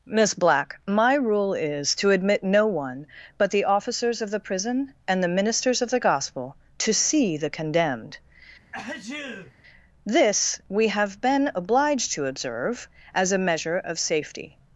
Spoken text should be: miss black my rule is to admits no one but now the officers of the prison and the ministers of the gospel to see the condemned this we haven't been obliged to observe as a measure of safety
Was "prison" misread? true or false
false